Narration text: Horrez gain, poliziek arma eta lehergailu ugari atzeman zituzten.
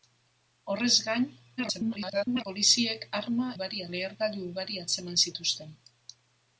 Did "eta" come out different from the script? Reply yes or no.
yes